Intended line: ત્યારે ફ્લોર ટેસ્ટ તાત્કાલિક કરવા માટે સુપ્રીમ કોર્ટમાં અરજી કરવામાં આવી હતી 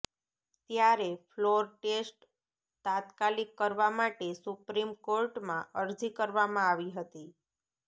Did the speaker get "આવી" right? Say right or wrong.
right